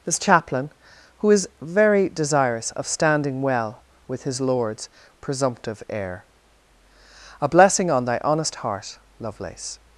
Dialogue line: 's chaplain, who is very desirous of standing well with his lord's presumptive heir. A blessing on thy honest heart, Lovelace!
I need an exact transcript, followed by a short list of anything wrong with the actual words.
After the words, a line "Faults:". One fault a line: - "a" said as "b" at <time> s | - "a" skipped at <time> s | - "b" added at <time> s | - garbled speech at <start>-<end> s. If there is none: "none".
'this chaplain, who is very desirous of standing well with his lord's presumptive heir. A blessing on thy honest heart, Lovelace!
Faults:
- "s" said as "this" at 0.0 s